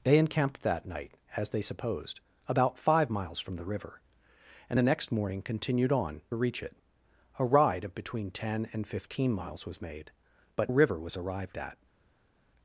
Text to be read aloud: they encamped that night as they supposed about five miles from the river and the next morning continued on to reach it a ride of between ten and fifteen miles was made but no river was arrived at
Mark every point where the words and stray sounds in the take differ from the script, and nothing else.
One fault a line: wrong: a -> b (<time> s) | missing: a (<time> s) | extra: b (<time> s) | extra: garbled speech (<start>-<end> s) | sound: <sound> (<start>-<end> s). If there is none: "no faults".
missing: to (6.2 s)
missing: no (10.7 s)